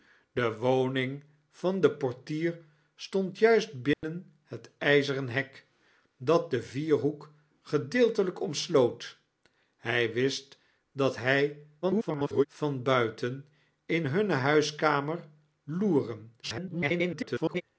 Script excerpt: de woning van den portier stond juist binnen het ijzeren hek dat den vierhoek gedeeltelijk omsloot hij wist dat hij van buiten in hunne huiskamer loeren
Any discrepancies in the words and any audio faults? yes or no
yes